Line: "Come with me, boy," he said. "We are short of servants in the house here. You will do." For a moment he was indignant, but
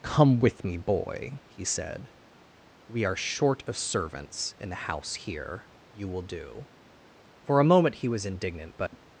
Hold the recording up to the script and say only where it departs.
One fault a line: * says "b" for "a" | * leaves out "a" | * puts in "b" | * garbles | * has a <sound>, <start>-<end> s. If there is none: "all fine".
* has a dropout, 8.9-8.9 s